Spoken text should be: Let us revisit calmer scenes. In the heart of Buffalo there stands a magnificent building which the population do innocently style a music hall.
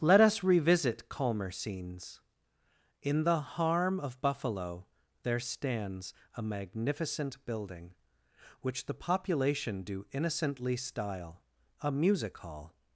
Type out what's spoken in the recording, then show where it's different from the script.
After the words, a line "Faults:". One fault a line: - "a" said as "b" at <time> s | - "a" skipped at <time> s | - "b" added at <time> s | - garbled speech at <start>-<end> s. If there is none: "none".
Let us revisit calmer scenes. In the harm of Buffalo there stands a magnificent building which the population do innocently style a music hall.
Faults:
- "heart" said as "harm" at 3.4 s